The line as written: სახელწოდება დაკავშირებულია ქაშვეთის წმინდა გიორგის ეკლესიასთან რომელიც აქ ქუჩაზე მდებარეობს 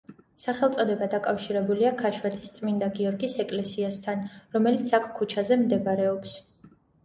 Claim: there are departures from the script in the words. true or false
false